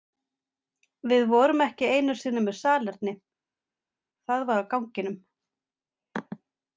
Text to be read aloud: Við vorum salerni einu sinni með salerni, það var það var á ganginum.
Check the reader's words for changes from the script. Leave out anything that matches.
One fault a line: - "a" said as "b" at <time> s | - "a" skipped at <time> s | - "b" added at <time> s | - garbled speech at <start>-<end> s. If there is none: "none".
- "salerni" said as "ekki" at 1.6 s
- "það var" skipped at 4.6 s